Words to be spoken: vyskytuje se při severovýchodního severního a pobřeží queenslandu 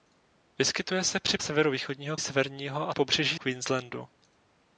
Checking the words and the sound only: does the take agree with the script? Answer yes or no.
yes